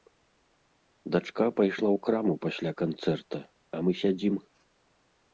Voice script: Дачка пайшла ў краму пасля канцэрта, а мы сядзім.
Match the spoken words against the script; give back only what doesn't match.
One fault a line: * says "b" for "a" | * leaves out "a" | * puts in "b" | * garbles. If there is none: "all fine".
all fine